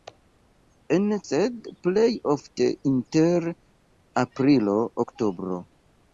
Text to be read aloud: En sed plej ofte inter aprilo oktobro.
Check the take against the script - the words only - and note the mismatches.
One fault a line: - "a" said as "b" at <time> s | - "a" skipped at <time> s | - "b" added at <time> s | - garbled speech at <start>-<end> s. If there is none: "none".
none